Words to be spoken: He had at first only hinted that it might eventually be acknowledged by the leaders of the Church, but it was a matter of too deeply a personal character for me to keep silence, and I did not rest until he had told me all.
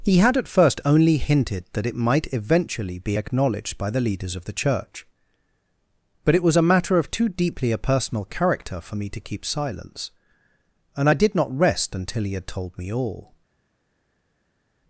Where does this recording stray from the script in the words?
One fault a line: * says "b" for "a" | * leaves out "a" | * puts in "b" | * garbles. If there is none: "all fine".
all fine